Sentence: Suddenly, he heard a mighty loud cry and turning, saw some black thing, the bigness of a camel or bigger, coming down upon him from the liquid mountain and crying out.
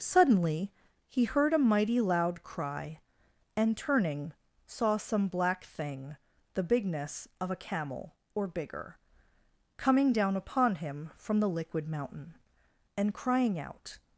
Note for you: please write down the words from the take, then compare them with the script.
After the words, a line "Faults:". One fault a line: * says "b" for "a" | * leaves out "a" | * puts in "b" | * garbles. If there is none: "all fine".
Suddenly, he heard a mighty loud cry and turning, saw some black thing, the bigness of a camel or bigger, coming down upon him from the liquid mountain and crying out.
Faults:
all fine